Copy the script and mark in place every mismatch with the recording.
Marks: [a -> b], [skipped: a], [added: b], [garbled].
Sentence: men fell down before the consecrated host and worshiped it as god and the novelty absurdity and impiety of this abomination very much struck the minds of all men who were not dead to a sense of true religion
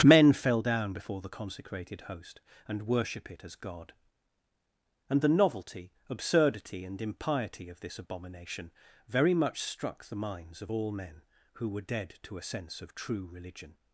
men fell down before the consecrated host and [worshiped -> worship] it as god and the novelty absurdity and impiety of this abomination very much struck the minds of all men who were [skipped: not] dead to a sense of true religion